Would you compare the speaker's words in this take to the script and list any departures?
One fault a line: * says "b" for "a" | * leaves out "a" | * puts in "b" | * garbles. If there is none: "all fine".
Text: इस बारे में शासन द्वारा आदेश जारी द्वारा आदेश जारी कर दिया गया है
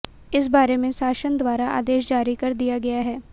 * leaves out "द्वारा आदेश जारी"